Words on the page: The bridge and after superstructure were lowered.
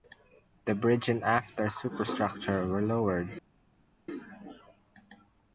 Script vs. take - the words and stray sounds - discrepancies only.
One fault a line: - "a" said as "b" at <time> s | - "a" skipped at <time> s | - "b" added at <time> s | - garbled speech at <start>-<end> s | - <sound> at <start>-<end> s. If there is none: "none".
none